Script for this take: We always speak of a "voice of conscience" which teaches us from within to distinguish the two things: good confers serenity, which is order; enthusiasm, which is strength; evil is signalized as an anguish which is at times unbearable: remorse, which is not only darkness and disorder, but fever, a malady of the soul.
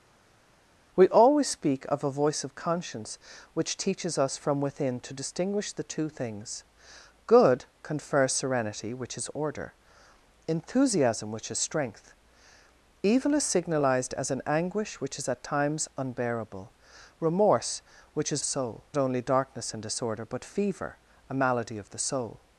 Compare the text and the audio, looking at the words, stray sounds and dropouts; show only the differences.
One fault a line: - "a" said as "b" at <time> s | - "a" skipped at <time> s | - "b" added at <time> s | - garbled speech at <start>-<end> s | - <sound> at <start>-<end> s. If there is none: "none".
- "not" said as "soul" at 18.4 s